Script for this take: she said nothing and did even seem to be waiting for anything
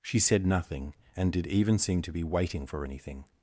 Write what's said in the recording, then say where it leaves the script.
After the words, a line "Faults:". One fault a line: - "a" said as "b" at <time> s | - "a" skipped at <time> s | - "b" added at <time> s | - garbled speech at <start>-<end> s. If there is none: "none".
she said nothing and did even seem to be waiting for anything
Faults:
none